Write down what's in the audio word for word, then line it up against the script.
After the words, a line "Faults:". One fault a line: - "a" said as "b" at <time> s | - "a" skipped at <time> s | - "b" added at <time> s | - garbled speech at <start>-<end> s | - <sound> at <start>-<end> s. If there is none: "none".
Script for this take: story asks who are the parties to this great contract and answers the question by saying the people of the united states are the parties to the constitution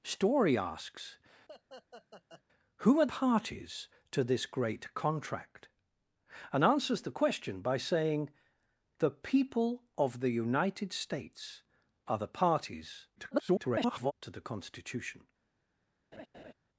story asks who are parties to this great contract and answers the question by saying the people of the united states are the parties [garbled] to the constitution
Faults:
- laugh at 1.5-2.4 s
- "the" skipped at 3.1 s
- garbled speech at 13.2-14.1 s
- laugh at 16.1-16.5 s